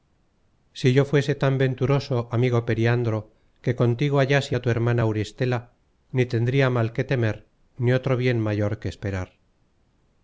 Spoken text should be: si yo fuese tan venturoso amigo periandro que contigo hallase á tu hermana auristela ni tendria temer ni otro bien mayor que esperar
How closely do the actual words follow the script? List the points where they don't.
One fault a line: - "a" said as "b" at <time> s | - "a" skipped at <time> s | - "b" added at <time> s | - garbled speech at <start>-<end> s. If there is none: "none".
- "mal que" added at 6.8 s